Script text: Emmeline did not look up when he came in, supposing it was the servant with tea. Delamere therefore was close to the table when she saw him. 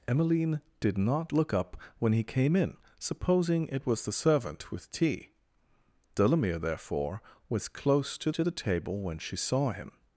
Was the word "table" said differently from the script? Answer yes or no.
no